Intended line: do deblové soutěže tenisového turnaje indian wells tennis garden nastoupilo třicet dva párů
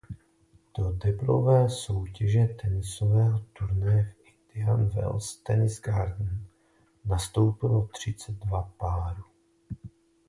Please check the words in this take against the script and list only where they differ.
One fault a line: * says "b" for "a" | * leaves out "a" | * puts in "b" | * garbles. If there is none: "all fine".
* puts in "v"